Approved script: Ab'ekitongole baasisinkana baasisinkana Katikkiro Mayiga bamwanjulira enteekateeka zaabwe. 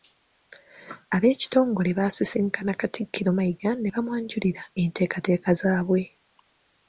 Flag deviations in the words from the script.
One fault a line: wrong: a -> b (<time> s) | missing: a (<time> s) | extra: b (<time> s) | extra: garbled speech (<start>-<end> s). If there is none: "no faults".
missing: baasisinkana (2.7 s)
extra: ne (3.8 s)